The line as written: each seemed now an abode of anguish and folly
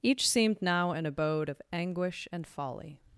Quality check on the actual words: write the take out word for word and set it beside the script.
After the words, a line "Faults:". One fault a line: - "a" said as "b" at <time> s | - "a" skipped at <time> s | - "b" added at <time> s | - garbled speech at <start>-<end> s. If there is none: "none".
each seemed now an abode of anguish and folly
Faults:
none